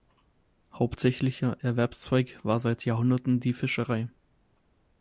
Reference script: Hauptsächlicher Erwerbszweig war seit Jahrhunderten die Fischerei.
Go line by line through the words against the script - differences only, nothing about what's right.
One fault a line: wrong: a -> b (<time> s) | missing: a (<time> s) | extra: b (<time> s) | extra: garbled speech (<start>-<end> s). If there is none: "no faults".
no faults